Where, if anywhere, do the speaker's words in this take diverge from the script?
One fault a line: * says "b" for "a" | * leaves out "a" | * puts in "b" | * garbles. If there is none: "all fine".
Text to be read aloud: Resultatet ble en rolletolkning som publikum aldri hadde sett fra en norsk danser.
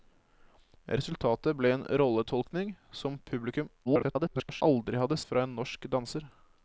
* garbles
* leaves out "sett"